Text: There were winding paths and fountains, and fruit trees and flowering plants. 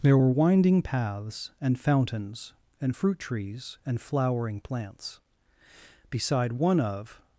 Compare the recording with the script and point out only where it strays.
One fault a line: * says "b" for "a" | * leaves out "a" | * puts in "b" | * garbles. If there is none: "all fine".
* puts in "Beside one of"